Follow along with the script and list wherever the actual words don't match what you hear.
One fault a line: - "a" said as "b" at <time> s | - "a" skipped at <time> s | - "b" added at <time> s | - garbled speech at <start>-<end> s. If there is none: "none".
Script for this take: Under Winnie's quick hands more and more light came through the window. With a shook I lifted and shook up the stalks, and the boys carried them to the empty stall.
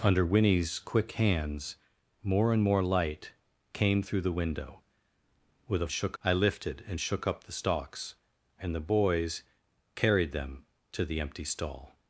none